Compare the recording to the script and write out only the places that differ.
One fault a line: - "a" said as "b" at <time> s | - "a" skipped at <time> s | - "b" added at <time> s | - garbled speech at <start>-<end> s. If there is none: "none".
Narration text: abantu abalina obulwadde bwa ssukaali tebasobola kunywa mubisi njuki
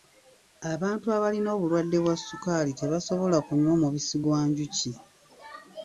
- "gwa" added at 4.2 s